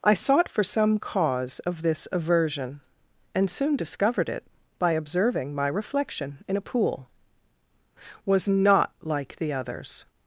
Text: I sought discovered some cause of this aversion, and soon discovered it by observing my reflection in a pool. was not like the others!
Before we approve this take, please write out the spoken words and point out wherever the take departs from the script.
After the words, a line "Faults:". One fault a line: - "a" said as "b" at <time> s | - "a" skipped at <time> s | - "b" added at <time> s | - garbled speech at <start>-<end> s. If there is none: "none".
I sought for some cause of this aversion, and soon discovered it by observing my reflection in a pool. was not like the others!
Faults:
- "discovered" said as "for" at 0.5 s